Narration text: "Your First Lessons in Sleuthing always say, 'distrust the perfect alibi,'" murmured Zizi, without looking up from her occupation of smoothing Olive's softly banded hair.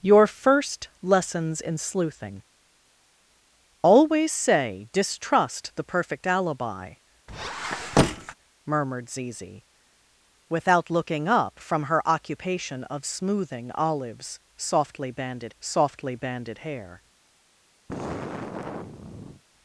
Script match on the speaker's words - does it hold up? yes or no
no